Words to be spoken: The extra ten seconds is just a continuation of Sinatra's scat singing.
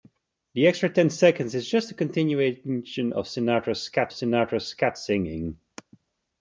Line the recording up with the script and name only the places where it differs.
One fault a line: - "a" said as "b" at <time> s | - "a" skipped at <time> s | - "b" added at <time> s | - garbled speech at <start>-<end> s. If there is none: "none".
- "Sinatra's scat" added at 4.1 s